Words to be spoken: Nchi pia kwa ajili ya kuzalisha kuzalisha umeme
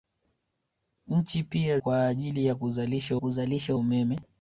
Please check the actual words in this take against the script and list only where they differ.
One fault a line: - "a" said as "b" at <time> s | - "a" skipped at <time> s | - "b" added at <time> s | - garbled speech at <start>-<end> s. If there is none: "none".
none